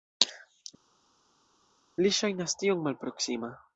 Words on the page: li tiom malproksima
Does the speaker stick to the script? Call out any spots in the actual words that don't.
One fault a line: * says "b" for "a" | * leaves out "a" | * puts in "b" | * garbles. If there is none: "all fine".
* puts in "ŝajnas"